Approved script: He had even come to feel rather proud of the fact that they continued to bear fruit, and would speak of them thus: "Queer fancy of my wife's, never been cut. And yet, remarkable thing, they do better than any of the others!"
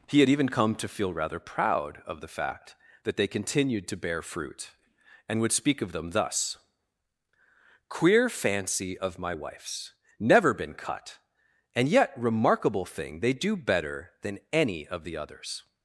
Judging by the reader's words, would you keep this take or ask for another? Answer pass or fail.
pass